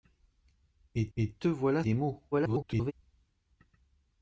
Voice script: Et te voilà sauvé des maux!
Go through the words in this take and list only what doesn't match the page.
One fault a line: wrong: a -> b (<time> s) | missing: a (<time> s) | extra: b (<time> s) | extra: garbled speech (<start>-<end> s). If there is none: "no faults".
extra: et (1.2 s)
missing: sauvé (1.8 s)
extra: garbled speech (2.3-2.9 s)